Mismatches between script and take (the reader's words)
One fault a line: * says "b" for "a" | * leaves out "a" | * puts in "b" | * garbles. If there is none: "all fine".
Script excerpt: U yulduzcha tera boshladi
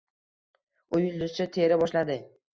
all fine